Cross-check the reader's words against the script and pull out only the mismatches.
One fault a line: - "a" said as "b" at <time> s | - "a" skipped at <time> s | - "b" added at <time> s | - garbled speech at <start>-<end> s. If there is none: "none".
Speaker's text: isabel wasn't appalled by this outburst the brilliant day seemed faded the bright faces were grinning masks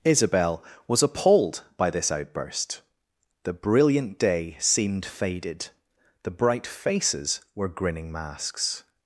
- "wasn't" said as "was" at 0.9 s